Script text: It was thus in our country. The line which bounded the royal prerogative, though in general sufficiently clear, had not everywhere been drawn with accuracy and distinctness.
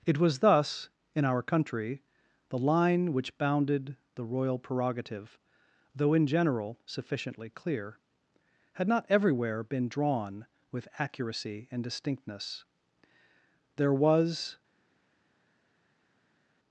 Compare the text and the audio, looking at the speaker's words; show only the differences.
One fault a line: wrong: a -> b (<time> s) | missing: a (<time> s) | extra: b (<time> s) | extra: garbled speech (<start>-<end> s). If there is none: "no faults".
extra: There was (13.8 s)